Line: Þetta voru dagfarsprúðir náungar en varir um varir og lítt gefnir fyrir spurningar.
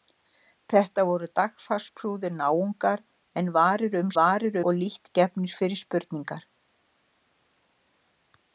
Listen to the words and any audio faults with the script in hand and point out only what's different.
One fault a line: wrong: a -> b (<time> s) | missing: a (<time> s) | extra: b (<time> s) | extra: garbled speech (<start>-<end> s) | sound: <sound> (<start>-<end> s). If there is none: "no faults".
no faults